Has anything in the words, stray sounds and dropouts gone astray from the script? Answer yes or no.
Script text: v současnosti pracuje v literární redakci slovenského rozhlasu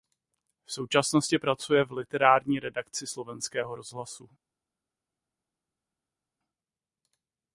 no